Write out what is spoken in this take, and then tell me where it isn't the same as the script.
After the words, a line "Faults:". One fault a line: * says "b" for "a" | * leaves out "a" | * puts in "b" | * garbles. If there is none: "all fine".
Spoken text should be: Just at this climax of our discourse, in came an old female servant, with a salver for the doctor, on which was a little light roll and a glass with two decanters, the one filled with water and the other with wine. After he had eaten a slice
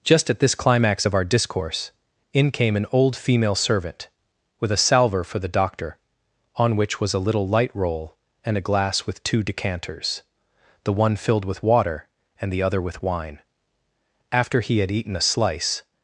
Just at this climax of our discourse, in came an old female servant, with a salver for the doctor, on which was a little light roll and a glass with two decanters, the one filled with water and the other with wine. After he had eaten a slice
Faults:
all fine